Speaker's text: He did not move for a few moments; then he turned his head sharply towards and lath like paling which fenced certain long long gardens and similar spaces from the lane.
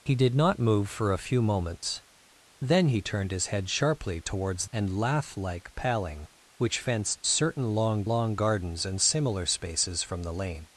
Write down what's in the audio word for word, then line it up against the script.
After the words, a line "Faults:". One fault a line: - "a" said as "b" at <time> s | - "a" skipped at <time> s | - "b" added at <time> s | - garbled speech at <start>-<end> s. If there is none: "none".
He did not move for a few moments; then he turned his head sharply towards and lath like paling which fenced certain long long gardens and similar spaces from the lane.
Faults:
none